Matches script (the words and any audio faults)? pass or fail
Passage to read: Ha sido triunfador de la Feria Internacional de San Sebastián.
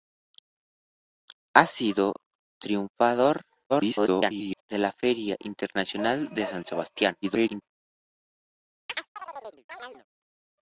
fail